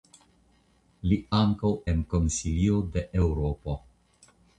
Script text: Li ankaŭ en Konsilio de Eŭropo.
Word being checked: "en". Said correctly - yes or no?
yes